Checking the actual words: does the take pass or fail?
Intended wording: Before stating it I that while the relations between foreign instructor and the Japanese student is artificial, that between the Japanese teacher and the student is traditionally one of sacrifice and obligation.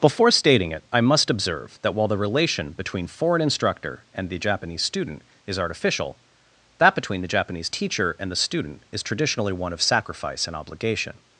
fail